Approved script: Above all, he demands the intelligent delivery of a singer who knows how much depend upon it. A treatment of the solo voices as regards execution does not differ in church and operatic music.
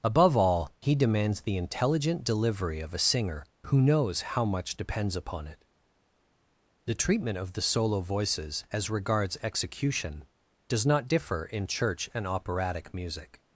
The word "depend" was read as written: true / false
false